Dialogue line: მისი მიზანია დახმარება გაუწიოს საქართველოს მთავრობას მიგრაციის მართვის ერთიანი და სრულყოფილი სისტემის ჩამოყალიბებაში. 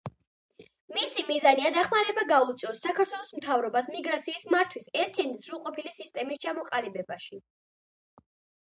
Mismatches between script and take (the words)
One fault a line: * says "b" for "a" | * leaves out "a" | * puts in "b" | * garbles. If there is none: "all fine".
all fine